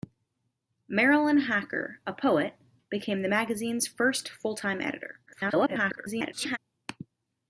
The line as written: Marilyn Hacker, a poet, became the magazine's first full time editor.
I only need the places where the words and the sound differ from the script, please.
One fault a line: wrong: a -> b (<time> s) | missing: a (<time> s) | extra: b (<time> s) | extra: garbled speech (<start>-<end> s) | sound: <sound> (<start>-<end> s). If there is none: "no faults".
extra: garbled speech (5.3-6.6 s)